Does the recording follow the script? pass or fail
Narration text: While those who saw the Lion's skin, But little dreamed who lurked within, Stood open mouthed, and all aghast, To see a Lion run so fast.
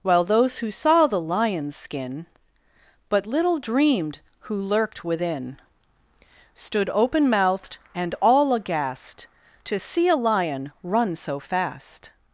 pass